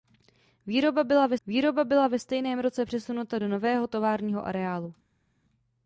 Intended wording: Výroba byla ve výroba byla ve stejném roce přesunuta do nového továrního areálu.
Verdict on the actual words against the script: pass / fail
pass